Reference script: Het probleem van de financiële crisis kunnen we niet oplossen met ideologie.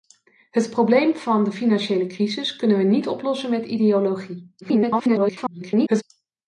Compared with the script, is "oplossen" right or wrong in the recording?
right